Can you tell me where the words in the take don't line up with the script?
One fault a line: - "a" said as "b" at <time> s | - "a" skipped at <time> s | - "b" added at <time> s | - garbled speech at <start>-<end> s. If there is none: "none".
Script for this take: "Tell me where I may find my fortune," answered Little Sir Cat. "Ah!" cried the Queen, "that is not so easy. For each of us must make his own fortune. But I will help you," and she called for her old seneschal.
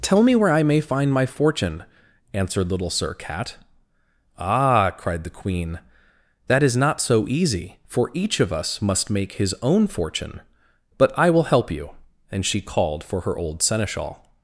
none